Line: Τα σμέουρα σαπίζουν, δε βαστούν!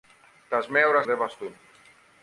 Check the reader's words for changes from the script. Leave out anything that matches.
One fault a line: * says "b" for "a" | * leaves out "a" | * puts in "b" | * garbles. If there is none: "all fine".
* leaves out "σαπίζουν"